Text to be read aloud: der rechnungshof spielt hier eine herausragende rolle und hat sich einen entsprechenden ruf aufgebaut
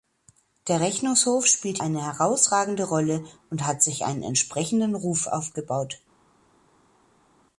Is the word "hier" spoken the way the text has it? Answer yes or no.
no